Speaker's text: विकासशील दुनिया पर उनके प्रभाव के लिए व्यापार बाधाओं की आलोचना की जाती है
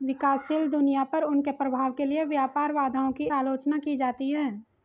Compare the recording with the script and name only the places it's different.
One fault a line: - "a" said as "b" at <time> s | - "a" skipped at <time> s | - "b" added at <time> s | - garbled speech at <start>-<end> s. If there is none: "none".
none